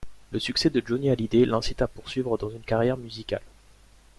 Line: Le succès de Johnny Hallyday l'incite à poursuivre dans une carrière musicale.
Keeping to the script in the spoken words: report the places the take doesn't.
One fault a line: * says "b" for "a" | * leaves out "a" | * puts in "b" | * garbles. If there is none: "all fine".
all fine